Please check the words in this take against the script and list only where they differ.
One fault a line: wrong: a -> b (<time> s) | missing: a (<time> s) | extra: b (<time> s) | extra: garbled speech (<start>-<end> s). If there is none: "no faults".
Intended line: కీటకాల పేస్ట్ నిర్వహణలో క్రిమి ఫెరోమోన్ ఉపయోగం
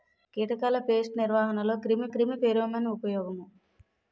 extra: క్రిమి (2.1 s)